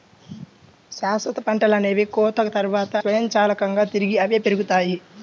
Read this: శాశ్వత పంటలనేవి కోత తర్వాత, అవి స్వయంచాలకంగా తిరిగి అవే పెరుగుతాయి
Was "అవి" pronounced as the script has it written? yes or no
no